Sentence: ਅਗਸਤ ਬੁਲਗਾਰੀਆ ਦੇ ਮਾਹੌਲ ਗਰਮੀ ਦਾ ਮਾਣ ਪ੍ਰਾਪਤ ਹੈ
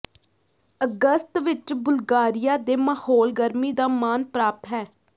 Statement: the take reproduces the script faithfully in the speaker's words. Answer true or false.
false